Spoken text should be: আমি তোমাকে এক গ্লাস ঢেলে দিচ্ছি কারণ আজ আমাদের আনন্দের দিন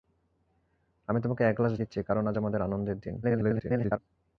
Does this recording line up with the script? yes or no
no